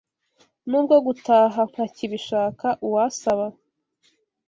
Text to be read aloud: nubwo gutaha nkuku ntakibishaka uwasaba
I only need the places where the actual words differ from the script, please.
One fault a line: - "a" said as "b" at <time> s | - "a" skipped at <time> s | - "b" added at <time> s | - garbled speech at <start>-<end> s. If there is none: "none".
- "nkuku" skipped at 1.6 s